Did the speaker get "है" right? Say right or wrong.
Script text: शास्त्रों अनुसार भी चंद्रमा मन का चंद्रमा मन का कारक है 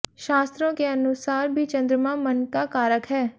right